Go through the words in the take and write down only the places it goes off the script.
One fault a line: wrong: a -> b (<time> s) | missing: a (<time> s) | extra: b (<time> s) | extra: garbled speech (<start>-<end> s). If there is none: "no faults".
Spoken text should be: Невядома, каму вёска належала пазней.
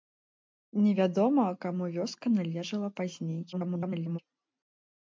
extra: garbled speech (3.5-4.2 s)